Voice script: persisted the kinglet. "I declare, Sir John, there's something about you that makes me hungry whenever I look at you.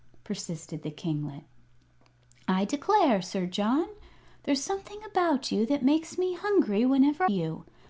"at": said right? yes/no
no